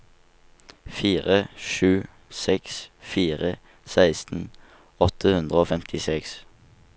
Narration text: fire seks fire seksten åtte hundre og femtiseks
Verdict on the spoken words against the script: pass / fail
fail